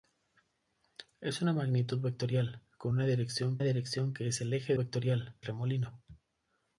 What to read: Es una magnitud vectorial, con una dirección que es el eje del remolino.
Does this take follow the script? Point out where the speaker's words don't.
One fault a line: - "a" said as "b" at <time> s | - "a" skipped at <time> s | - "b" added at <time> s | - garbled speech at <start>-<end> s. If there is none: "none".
- "dirección" added at 3.6 s
- "del" said as "vectorial" at 4.7 s